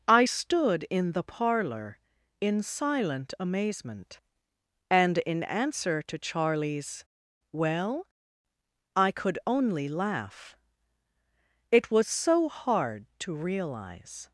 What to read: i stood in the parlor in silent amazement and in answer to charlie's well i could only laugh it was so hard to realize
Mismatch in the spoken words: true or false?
false